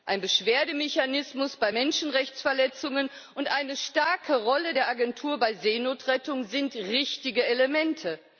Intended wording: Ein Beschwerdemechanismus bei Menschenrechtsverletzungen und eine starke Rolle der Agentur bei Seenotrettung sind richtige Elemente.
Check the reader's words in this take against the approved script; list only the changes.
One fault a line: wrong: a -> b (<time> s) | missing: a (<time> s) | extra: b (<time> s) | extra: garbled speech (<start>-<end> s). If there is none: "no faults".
no faults